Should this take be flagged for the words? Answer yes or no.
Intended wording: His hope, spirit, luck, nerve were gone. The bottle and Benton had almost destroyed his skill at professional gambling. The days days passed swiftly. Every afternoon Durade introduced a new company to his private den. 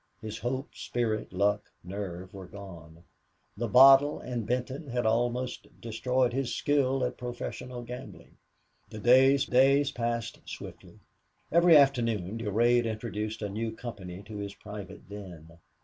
no